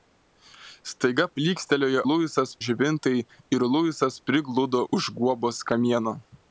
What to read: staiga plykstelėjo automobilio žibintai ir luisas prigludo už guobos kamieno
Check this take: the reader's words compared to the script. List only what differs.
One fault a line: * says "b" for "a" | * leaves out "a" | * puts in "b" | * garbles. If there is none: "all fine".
* says "luisas" for "automobilio"